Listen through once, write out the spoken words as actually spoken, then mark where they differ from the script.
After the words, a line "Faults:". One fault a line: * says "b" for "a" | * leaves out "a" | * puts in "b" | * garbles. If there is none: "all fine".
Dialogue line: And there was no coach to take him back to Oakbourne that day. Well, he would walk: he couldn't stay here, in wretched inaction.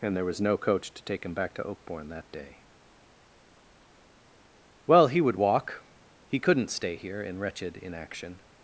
And there was no coach to take him back to Oakbourne that day. Well, he would walk: he couldn't stay here, in wretched inaction.
Faults:
all fine